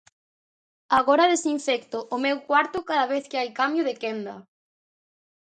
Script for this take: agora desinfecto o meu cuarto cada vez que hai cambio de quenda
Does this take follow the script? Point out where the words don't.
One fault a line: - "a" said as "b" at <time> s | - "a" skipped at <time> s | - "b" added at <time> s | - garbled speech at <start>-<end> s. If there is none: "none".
none